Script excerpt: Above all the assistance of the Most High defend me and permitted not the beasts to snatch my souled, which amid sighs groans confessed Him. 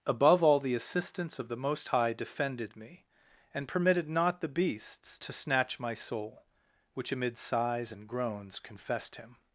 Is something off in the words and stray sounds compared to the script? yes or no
yes